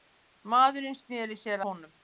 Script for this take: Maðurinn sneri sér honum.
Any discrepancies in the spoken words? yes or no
no